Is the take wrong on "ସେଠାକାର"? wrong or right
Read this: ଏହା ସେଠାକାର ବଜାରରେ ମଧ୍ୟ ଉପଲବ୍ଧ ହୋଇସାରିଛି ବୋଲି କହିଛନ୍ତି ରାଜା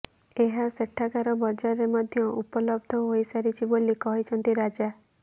right